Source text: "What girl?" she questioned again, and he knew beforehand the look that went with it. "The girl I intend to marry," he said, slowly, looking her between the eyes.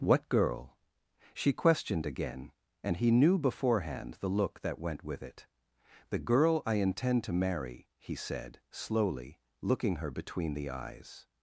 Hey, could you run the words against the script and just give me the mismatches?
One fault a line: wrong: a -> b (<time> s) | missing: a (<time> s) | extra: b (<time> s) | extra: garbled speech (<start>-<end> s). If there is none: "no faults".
no faults